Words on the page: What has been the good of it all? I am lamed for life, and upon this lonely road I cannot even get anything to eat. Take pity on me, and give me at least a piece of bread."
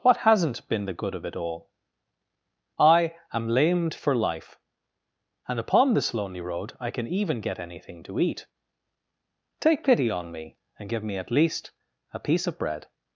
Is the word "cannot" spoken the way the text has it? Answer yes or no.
no